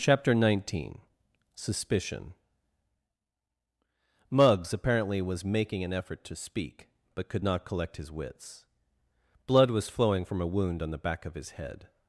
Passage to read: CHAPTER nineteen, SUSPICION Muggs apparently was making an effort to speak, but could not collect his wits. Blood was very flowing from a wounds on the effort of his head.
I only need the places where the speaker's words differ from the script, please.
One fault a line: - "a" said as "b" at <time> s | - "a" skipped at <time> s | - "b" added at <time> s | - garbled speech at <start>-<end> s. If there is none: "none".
- "very" skipped at 9.9 s
- "wounds" said as "wound" at 10.5 s
- "effort" said as "back" at 11.0 s